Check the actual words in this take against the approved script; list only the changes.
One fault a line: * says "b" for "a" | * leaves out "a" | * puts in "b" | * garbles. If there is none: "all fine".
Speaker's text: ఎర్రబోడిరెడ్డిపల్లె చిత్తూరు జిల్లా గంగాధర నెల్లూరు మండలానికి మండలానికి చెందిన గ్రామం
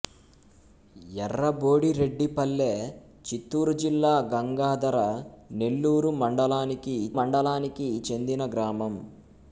all fine